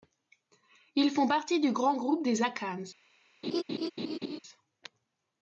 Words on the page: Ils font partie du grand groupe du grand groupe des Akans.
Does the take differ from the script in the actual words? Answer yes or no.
yes